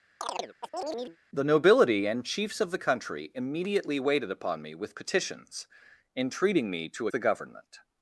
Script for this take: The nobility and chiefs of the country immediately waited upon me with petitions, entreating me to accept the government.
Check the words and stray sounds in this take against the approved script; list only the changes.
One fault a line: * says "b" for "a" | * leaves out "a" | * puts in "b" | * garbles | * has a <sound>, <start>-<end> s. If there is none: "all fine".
* has a chirp, 0.2-1.2 s
* leaves out "accept"